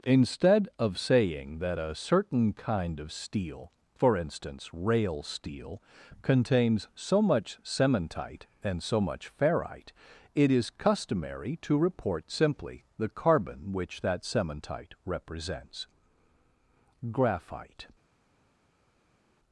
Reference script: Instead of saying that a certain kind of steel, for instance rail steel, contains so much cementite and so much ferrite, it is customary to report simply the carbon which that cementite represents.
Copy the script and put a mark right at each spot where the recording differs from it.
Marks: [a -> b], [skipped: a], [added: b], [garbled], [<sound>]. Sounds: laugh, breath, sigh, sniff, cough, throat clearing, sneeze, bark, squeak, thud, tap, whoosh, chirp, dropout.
Instead of saying that a certain kind of steel, for instance rail steel, contains so much cementite and so much ferrite, it is customary to report simply the carbon which that cementite represents. [added: Graphite]